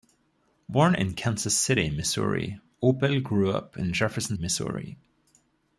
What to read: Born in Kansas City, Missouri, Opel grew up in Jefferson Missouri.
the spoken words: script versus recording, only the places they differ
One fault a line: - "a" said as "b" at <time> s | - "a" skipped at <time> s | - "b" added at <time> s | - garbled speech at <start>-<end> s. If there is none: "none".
none